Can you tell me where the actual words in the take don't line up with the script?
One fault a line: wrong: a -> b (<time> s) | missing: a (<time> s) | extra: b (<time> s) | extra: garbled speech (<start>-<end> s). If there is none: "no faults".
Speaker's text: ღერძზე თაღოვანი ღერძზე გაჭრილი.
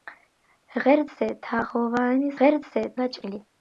no faults